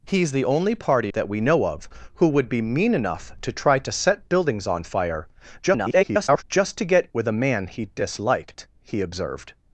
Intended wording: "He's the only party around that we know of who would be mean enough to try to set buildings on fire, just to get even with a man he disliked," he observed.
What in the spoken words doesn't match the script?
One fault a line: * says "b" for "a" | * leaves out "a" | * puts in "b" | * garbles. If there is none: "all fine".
* leaves out "around"
* garbles
* leaves out "even"